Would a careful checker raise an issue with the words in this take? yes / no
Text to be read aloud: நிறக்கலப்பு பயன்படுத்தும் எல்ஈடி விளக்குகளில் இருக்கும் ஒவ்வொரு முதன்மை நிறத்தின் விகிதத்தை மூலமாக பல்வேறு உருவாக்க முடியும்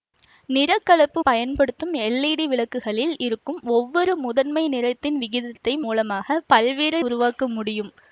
no